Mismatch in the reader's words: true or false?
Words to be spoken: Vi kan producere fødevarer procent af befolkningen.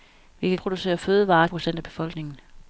false